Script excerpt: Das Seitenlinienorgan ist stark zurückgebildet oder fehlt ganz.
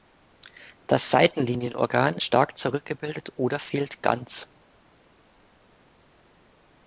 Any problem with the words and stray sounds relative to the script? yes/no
yes